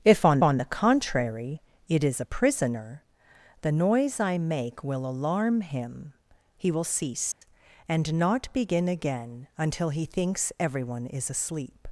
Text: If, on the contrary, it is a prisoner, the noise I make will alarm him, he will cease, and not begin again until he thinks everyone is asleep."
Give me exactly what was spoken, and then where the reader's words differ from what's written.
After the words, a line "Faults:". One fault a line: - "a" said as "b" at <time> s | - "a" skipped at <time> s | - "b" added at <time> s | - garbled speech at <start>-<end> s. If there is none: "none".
If, on on the contrary, it is a prisoner, the noise I make will alarm him, he will cease, and not begin again until he thinks everyone is asleep."
Faults:
- "on" added at 0.4 s